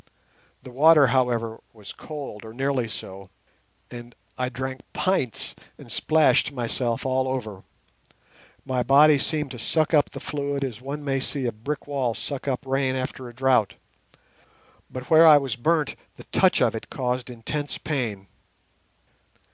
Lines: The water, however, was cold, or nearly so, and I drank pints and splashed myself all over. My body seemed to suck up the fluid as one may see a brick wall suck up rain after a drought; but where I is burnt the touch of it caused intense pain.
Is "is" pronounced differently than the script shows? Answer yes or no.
yes